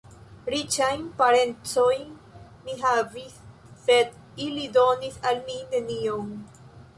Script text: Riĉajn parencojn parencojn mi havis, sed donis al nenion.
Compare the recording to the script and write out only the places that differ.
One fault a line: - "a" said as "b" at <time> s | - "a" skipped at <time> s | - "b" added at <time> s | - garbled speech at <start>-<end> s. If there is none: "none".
- "parencojn" skipped at 2.1 s
- "ili" added at 4.5 s
- "mi" added at 5.5 s